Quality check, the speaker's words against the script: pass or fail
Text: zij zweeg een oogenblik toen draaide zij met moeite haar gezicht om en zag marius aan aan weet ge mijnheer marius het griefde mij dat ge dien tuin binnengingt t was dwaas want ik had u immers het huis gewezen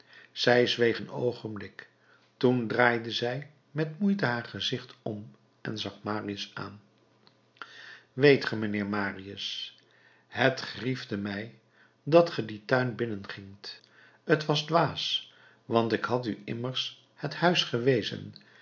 fail